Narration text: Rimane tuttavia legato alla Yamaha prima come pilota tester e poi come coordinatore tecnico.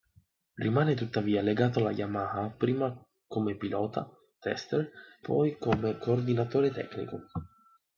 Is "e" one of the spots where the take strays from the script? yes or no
yes